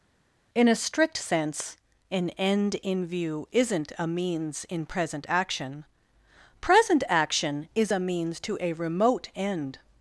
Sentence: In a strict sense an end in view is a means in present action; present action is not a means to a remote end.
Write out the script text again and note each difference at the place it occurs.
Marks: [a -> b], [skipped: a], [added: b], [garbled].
In a strict sense an end in view [is -> isn't] a means in present action; present action is [skipped: not] a means to a remote end.